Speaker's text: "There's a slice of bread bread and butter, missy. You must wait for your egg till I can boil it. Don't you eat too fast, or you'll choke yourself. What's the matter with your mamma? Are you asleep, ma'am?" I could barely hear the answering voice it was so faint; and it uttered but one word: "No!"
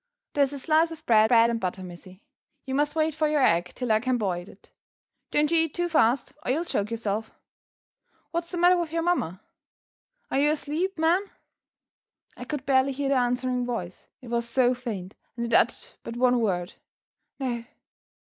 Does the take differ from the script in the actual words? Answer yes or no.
no